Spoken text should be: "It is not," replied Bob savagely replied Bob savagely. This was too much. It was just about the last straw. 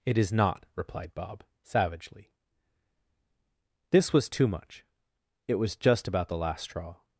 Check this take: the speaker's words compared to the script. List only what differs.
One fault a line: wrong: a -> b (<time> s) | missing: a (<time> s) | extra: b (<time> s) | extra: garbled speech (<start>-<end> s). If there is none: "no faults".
missing: replied Bob savagely (2.3 s)